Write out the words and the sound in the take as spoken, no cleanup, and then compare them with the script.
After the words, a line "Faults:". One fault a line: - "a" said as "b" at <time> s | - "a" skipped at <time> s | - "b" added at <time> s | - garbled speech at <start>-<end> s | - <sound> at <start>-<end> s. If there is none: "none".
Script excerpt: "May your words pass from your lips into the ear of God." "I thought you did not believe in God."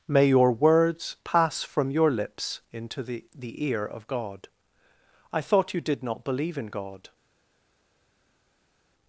"May your words pass from your lips into the the ear of God." "I thought you did not believe in God."
Faults:
- "the" added at 3.4 s